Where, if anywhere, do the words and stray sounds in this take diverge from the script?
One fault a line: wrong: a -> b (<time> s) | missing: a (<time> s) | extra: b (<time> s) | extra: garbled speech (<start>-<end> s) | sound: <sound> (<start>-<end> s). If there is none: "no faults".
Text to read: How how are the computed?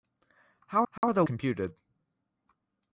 sound: dropout (1.0-1.0 s)